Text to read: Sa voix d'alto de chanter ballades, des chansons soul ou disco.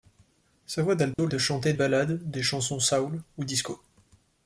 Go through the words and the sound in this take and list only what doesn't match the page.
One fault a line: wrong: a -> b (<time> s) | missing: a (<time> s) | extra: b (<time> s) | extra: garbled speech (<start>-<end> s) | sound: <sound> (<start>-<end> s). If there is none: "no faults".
sound: dropout (1.1-1.2 s)